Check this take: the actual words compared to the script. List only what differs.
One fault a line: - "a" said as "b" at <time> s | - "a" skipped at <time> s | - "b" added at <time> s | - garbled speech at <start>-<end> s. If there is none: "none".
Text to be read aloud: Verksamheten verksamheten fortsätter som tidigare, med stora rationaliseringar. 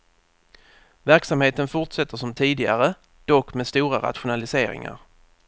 - "verksamheten" skipped at 1.7 s
- "dock" added at 3.2 s